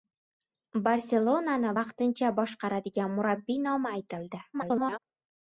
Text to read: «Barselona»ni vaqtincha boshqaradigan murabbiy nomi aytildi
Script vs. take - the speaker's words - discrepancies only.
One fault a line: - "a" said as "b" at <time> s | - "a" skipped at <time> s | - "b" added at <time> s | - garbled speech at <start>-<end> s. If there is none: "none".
- garbled speech at 4.5-5.0 s